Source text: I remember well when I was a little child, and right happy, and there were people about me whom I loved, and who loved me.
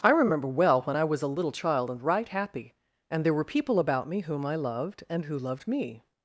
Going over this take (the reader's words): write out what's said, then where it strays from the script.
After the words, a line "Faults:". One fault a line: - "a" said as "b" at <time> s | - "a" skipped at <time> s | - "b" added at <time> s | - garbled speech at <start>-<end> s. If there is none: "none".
I remember well when I was a little child, and right happy, and there were people about me whom I loved, and who loved me.
Faults:
none